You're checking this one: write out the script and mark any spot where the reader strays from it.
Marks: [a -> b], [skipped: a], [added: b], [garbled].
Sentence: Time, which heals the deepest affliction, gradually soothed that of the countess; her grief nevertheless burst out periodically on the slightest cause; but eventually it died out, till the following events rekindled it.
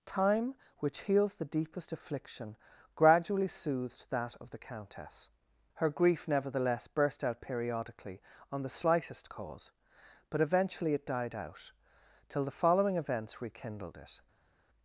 Time, which heals the deepest affliction, gradually soothed that of the countess; her grief nevertheless burst out periodically on the slightest cause; but eventually it died out, till the following events rekindled it.